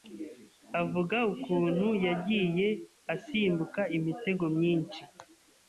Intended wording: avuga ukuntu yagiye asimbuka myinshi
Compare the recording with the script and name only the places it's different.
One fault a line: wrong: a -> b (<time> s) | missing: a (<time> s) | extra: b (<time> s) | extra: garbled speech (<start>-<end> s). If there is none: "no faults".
extra: imitego (4.0 s)